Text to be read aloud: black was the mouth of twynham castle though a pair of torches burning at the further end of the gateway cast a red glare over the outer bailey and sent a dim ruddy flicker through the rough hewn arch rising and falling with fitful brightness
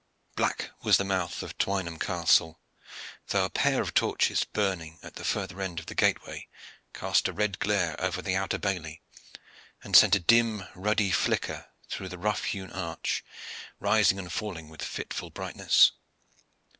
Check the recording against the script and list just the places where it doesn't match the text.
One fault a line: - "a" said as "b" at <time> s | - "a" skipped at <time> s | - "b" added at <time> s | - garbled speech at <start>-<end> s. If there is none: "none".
none